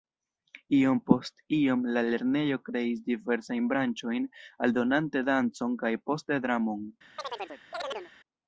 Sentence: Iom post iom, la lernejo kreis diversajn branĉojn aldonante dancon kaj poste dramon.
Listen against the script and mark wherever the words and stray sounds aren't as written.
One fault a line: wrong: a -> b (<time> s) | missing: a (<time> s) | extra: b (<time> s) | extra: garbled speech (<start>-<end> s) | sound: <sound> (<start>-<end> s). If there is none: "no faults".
sound: chirp (7.2-8.1 s)